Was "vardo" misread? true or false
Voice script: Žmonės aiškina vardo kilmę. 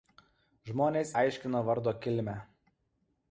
false